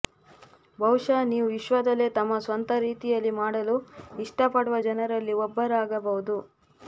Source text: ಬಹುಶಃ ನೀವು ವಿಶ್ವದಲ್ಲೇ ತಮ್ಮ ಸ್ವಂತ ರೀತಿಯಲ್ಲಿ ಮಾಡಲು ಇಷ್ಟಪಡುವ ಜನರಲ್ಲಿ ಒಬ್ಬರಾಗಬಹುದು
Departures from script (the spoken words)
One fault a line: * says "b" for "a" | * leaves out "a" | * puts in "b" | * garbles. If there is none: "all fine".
all fine